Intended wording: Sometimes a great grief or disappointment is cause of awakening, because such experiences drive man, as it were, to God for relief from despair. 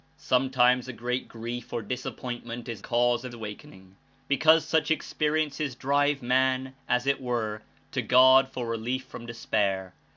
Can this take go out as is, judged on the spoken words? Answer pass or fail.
pass